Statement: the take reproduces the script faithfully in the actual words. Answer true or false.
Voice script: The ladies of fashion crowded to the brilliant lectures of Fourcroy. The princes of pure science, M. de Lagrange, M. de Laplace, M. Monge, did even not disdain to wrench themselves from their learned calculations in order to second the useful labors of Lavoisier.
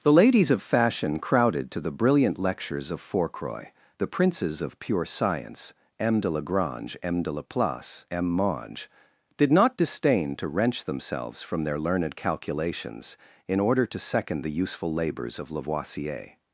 false